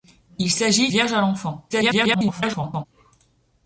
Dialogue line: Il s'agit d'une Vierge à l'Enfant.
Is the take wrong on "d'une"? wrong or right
wrong